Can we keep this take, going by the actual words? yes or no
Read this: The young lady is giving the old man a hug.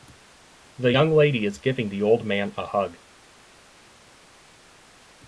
yes